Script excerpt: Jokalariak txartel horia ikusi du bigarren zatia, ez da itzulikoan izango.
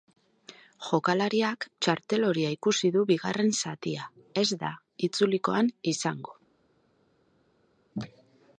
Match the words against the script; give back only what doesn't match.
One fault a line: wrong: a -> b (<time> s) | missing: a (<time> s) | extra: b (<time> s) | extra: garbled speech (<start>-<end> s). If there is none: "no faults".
no faults